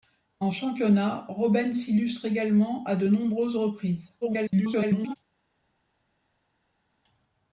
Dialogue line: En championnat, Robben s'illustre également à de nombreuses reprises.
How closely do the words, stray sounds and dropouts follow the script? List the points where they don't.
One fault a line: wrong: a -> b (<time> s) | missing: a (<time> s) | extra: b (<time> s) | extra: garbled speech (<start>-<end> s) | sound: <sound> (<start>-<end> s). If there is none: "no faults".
extra: garbled speech (4.2-5.1 s)